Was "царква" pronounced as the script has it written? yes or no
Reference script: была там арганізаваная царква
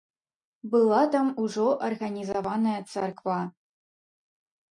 yes